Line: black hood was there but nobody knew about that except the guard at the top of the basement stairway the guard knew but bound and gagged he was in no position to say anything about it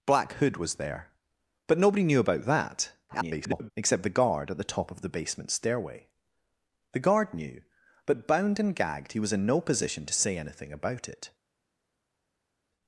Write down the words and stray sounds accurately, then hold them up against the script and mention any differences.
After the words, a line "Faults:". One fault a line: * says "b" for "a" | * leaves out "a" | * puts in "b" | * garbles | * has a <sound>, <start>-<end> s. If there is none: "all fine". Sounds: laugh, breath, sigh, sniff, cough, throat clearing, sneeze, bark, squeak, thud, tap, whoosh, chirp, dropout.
black hood was there but nobody knew about that [garbled] except the guard at the top of the basement stairway the guard knew but bound and gagged he was in no position to say anything about it
Faults:
* garbles